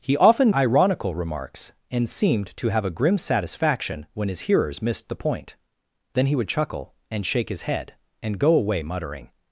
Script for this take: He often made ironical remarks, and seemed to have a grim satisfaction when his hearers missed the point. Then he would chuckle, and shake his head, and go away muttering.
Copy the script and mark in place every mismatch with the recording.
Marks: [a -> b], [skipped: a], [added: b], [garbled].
He often [skipped: made] ironical remarks, and seemed to have a grim satisfaction when his hearers missed the point. Then he would chuckle, and shake his head, and go away muttering.